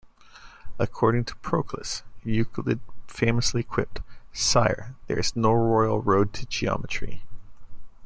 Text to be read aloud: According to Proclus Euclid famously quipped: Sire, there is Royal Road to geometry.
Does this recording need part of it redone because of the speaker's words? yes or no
yes